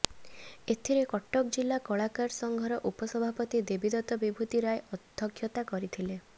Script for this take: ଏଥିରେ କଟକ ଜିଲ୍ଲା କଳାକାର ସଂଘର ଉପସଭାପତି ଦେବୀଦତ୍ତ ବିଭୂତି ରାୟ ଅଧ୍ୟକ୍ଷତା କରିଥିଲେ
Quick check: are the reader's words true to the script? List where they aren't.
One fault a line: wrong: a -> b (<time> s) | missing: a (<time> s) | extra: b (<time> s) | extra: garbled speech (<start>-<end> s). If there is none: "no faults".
no faults